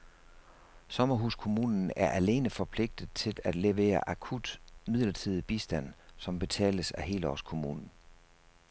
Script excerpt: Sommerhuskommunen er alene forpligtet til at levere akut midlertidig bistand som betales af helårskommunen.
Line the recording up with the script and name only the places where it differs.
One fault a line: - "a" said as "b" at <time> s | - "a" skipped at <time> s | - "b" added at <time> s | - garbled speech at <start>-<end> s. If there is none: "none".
none